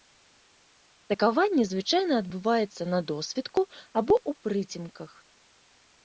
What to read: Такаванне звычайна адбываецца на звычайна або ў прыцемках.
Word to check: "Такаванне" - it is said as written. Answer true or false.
true